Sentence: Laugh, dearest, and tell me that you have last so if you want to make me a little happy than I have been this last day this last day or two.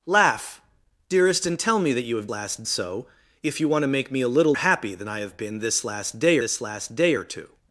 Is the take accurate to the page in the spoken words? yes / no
yes